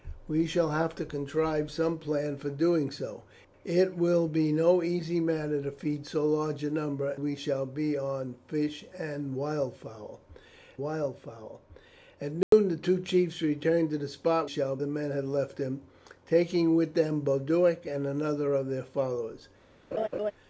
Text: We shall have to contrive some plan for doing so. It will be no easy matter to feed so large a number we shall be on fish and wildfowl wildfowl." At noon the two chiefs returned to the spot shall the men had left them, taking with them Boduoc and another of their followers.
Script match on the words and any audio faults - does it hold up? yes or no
no